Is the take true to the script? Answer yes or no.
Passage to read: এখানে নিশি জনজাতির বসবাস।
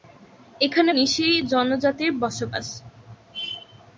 yes